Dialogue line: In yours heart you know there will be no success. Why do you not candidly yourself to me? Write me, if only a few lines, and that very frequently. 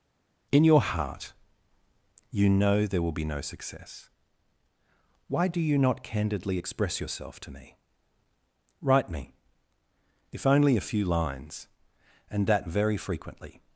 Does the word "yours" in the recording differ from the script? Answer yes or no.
yes